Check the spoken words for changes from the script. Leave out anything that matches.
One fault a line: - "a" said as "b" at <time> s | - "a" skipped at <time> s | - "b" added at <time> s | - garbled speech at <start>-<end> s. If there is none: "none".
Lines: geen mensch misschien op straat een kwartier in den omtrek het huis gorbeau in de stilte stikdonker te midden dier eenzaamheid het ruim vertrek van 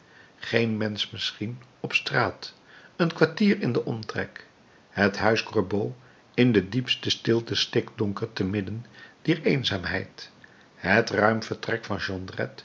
- "diepste" added at 6.7 s